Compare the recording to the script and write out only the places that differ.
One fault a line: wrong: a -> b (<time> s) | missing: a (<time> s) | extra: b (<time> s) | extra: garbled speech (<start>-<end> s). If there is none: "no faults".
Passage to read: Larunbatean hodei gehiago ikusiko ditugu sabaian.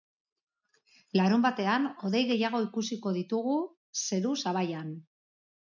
extra: zeru (4.1 s)